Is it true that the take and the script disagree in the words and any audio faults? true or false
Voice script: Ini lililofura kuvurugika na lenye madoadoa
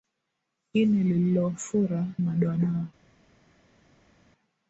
true